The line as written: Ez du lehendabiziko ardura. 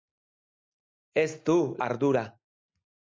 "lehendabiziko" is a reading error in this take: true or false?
true